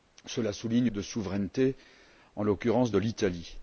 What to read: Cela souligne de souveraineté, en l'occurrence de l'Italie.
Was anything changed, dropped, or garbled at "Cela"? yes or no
no